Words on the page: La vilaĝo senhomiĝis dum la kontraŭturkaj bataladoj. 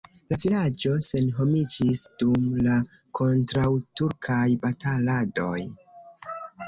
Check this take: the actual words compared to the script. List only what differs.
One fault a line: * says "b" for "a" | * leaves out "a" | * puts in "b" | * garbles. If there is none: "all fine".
all fine